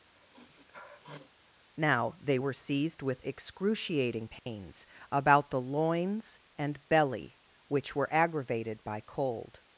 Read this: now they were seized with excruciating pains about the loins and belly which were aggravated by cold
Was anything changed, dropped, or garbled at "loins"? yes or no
no